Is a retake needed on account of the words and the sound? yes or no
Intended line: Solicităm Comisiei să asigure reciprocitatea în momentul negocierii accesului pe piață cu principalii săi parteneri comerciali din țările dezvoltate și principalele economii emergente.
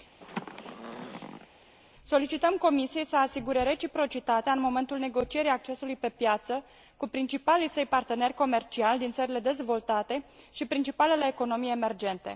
yes